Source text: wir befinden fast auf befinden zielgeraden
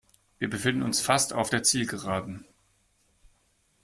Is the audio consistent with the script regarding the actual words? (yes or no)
no